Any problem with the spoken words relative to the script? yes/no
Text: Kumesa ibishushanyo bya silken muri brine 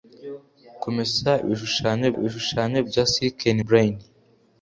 yes